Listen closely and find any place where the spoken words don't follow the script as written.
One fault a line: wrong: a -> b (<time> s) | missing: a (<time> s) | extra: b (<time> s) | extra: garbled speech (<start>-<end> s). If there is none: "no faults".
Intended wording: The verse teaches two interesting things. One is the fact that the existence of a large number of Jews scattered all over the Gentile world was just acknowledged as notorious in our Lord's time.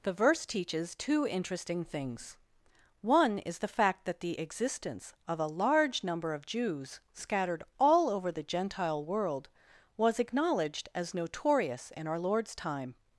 missing: just (10.2 s)